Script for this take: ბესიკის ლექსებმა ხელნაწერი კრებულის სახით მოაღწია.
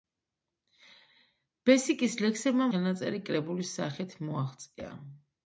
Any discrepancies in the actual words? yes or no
no